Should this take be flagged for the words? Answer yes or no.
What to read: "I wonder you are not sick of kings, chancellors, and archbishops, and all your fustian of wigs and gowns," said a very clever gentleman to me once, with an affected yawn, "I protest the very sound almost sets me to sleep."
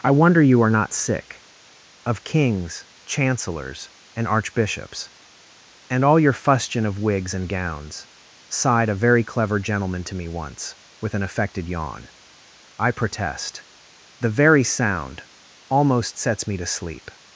yes